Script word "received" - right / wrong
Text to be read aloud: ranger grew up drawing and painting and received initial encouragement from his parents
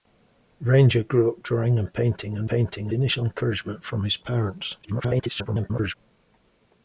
wrong